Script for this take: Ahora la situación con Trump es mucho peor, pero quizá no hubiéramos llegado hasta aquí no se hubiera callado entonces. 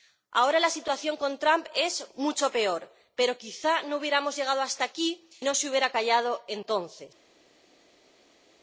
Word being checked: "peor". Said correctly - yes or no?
yes